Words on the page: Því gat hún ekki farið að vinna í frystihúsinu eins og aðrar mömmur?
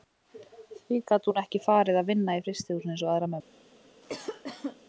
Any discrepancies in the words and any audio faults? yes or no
yes